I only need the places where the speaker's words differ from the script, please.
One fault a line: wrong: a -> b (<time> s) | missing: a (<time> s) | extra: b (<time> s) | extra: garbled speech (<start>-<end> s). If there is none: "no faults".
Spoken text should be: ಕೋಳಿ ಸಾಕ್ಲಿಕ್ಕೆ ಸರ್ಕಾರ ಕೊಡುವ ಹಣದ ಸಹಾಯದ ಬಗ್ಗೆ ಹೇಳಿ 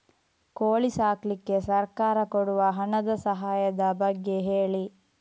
no faults